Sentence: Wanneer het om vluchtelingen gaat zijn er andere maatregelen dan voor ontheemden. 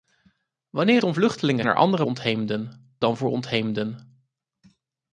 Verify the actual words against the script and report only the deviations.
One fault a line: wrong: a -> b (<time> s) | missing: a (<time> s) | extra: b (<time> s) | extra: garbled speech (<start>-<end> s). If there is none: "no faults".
missing: het (1.0 s)
missing: gaat zijn (1.6 s)
wrong: maatregelen -> ontheemden (2.0 s)